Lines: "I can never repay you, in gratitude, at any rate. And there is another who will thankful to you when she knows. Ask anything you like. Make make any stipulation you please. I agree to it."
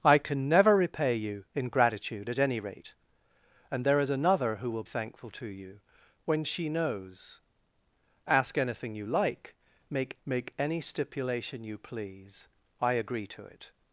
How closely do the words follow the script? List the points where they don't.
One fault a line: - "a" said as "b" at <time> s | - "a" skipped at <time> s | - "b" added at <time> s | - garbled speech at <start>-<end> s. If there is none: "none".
none